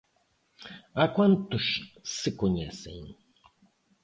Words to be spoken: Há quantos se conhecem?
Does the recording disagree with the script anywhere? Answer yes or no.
no